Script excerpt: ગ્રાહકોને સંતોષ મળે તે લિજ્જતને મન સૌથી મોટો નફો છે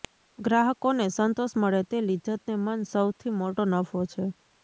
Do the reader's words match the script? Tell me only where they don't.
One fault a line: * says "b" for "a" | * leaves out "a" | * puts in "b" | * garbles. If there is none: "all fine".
all fine